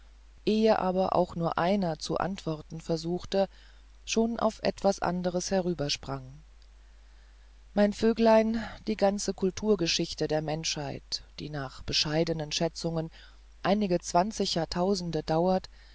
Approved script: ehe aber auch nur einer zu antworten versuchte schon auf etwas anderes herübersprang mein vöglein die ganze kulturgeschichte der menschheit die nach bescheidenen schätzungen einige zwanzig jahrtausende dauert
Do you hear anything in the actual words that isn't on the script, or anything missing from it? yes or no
no